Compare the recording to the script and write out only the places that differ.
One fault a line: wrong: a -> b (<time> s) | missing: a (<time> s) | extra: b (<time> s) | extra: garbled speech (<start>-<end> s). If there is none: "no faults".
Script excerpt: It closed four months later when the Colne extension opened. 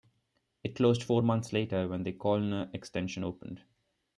no faults